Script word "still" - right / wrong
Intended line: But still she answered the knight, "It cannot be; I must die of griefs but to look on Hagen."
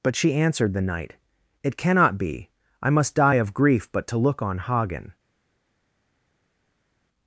wrong